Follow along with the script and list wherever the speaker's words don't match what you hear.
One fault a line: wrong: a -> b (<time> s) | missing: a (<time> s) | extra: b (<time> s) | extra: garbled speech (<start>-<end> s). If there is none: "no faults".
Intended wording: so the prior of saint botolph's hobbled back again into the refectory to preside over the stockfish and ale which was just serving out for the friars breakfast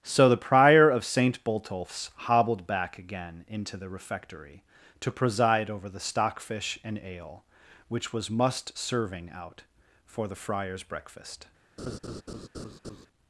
wrong: just -> must (8.3 s)